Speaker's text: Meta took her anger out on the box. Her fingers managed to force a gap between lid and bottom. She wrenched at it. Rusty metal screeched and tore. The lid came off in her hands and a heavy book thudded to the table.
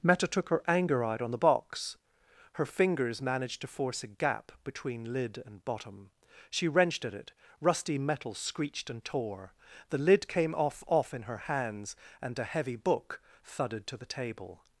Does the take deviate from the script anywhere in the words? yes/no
yes